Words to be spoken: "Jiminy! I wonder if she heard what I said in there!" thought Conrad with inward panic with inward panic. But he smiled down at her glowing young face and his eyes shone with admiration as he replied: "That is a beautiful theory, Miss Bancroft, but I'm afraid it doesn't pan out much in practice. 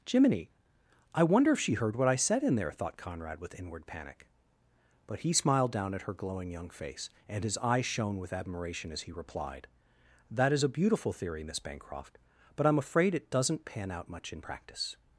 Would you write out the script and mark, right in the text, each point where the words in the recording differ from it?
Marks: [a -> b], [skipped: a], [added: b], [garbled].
"Jiminy! I wonder if she heard what I said in there!" thought Conrad with inward panic [skipped: with inward panic.] But he smiled down at her glowing young face and his eyes shone with admiration as he replied: "That is a beautiful theory, Miss Bancroft, but I'm afraid it doesn't pan out much in practice.